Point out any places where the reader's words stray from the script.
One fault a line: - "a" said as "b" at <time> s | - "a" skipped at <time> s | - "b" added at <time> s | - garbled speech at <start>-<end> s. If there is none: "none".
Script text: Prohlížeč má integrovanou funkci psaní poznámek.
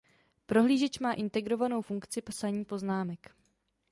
none